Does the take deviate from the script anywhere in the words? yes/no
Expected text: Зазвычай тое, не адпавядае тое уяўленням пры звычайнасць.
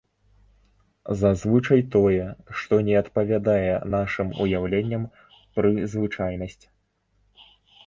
yes